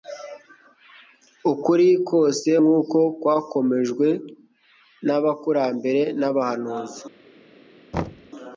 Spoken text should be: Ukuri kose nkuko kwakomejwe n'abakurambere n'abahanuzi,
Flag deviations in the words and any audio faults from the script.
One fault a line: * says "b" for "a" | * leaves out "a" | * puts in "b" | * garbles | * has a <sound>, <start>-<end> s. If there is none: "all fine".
* has a thud, 7.9-8.3 s